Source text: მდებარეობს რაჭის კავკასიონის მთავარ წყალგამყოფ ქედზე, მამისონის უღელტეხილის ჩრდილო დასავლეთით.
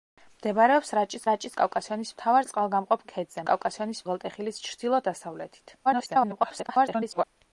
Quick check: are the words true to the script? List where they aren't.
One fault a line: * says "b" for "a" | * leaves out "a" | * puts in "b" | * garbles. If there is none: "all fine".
* puts in "რაჭის"
* says "კავკასიონის" for "მამისონის"
* garbles